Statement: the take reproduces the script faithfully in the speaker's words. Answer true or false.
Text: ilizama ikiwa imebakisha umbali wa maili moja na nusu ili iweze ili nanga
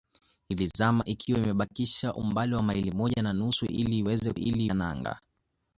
true